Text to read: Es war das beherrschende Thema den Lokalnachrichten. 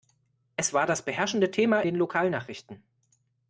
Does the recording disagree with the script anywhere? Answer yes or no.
no